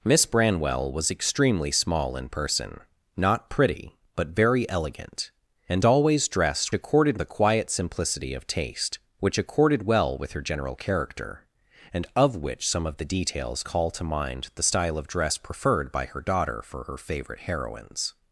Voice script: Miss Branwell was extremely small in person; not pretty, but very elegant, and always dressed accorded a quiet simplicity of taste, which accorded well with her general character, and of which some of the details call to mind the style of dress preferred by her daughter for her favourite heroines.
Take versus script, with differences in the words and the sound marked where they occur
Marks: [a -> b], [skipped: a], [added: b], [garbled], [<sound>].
Miss Branwell was extremely small in person; not pretty, but very elegant, and always dressed accorded a quiet simplicity of taste, which accorded well with her general character, and of which some of the details call to mind the style of dress preferred by her daughter for her favourite heroines.